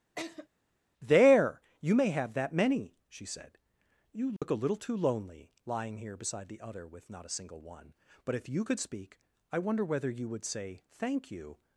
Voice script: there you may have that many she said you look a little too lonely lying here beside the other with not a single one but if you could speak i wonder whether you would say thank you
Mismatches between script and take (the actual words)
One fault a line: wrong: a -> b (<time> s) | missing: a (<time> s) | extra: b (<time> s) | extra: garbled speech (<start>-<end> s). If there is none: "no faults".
no faults